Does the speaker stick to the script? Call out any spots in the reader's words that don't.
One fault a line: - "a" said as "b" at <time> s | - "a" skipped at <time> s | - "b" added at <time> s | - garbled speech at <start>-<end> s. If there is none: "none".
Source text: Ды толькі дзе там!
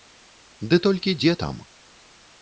none